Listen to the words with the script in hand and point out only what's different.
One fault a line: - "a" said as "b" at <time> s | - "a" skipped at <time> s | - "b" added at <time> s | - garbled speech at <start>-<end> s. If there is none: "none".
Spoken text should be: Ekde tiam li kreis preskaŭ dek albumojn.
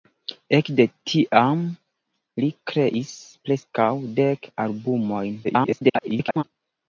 - garbled speech at 5.4-6.4 s